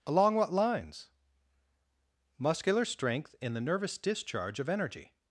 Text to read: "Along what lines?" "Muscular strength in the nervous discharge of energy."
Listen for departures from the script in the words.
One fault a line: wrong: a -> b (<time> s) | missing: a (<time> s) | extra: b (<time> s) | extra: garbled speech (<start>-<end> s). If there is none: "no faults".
no faults